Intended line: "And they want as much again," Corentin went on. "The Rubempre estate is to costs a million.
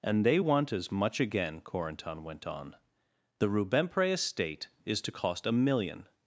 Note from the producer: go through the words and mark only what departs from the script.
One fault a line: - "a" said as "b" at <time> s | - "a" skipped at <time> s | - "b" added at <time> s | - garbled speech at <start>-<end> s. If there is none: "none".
- "costs" said as "cost" at 5.1 s